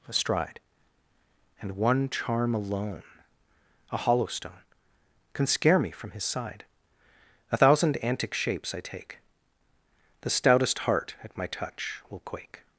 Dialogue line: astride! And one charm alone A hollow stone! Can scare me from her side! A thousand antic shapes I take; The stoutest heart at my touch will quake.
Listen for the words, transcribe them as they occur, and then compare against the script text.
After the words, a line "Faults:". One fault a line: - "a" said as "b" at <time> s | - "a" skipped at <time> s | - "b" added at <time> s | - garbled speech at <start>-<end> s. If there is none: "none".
astride! And one charm alone A hollow stone! Can scare me from his side! A thousand antic shapes I take; The stoutest heart at my touch will quake.
Faults:
- "her" said as "his" at 6.1 s